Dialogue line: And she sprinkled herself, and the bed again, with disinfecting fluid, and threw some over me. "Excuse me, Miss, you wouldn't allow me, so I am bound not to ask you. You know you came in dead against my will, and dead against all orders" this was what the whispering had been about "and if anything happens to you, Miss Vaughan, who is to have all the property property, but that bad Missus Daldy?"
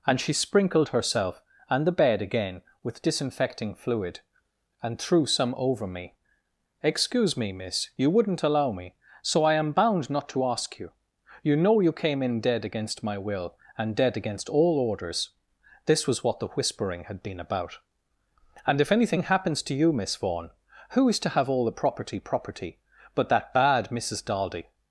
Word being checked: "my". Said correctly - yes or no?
yes